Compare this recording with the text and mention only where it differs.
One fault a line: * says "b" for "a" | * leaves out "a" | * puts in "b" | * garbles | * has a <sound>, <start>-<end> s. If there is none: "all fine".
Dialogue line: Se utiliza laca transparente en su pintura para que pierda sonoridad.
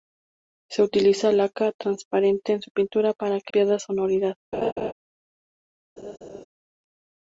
* has a laugh, 4.5-4.9 s
* has a laugh, 6.0-6.4 s